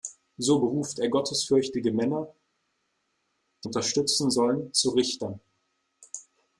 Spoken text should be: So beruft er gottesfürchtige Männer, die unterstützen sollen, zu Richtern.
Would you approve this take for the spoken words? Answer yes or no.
yes